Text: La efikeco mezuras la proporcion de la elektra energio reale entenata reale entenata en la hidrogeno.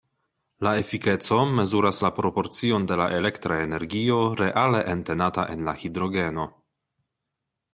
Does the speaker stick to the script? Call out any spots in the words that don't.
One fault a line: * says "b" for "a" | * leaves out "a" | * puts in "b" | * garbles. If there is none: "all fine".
* leaves out "reale entenata"